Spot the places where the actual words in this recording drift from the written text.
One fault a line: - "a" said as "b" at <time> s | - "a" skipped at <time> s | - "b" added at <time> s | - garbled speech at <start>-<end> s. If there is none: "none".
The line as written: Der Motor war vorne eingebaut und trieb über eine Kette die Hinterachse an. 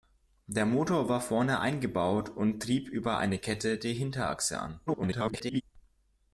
- garbled speech at 4.9-5.6 s